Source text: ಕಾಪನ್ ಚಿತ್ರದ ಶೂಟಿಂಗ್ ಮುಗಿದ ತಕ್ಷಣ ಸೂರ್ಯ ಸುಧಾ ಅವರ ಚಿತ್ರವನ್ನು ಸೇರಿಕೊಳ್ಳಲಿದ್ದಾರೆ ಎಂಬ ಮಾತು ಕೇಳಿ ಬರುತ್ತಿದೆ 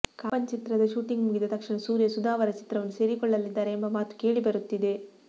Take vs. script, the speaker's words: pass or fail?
pass